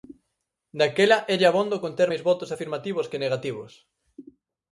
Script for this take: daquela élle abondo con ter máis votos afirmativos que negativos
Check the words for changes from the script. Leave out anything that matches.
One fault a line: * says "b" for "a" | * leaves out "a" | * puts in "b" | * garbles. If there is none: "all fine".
all fine